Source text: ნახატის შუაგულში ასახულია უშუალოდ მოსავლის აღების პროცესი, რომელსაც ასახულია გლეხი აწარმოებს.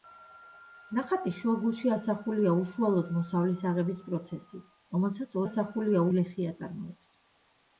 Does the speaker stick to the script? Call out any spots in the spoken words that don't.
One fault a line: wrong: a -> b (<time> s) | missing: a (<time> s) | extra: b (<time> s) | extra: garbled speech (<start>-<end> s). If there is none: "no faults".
no faults